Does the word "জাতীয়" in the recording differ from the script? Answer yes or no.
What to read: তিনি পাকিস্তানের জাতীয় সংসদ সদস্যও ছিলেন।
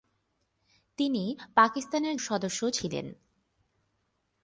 yes